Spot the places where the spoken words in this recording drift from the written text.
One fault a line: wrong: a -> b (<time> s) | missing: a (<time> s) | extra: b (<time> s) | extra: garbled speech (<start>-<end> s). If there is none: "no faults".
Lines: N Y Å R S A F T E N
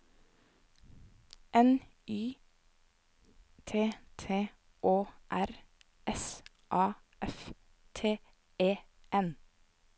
extra: T T (3.6 s)